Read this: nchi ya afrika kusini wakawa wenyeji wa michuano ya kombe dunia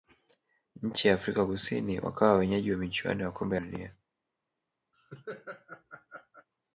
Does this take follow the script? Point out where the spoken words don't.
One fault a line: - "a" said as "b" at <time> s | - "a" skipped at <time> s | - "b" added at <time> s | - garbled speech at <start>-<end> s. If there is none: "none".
none